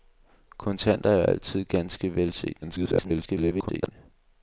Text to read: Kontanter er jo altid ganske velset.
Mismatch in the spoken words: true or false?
true